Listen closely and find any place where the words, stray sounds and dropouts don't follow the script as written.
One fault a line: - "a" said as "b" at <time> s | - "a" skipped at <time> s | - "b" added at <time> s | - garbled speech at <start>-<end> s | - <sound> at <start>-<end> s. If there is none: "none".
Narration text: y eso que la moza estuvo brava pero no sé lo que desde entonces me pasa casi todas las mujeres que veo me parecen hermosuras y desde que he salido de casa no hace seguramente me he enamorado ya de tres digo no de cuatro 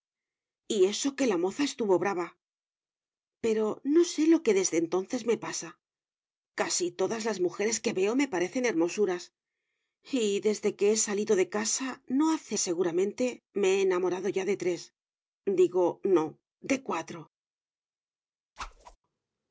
- whoosh at 18.6-19.0 s